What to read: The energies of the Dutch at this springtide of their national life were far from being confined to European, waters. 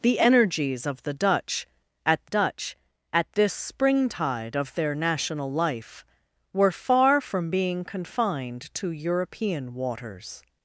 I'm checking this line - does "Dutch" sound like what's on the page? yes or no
yes